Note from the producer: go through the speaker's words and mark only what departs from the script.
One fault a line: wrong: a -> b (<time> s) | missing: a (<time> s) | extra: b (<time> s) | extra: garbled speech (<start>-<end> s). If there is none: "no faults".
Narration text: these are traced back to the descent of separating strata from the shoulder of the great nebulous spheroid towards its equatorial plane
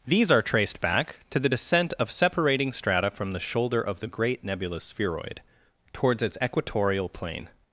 no faults